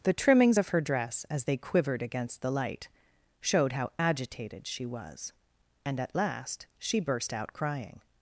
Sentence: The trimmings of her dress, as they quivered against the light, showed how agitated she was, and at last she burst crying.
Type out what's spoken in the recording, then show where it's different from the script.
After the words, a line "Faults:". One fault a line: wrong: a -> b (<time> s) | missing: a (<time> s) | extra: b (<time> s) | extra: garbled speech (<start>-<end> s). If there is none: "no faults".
The trimmings of her dress, as they quivered against the light, showed how agitated she was, and at last she burst out crying.
Faults:
extra: out (7.3 s)